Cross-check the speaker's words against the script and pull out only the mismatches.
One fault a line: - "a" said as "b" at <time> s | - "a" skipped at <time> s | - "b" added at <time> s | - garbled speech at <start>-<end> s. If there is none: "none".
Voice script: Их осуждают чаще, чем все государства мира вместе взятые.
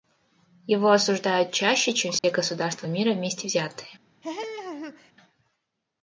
- "Их" said as "Его" at 0.7 s